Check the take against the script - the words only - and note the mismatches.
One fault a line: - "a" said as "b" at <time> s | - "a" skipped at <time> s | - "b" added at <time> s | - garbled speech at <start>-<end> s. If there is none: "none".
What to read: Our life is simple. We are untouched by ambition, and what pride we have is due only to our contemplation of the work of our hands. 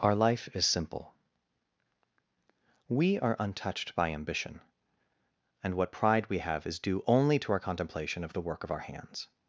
none